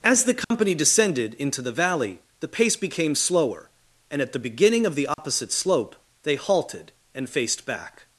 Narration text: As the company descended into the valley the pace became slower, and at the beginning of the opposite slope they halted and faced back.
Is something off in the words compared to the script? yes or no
no